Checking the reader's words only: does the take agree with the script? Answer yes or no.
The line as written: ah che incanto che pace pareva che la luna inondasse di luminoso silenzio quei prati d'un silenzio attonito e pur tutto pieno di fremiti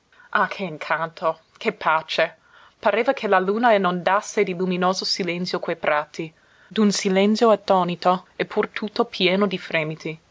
yes